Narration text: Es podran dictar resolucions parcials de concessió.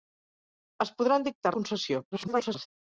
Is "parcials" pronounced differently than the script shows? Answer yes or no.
yes